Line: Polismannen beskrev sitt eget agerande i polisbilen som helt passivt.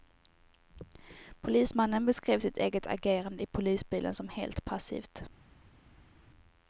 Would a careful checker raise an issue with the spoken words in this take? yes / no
no